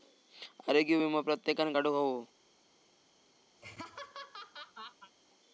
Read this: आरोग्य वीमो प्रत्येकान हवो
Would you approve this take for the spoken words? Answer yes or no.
no